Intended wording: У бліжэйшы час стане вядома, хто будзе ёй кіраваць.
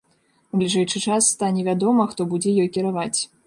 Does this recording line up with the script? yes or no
yes